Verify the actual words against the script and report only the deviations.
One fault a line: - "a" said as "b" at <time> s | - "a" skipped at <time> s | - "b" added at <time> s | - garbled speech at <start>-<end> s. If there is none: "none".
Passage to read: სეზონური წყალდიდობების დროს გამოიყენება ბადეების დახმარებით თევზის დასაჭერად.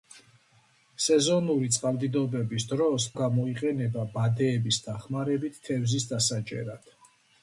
none